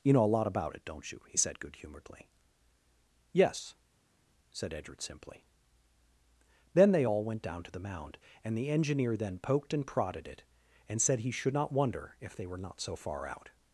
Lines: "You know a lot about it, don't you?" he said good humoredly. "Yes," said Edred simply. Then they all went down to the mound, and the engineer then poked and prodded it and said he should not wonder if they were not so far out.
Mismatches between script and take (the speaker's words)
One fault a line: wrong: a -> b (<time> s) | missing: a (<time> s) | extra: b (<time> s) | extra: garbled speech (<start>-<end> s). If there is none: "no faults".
no faults